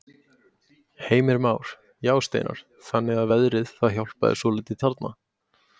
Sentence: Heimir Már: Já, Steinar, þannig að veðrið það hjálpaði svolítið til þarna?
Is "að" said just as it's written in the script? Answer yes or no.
yes